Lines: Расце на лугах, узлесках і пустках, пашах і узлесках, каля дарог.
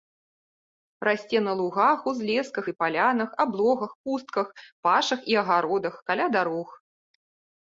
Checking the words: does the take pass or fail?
fail